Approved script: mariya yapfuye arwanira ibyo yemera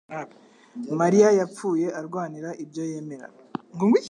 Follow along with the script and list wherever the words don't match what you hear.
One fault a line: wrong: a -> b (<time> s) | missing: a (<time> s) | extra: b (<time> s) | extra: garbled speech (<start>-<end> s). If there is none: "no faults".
no faults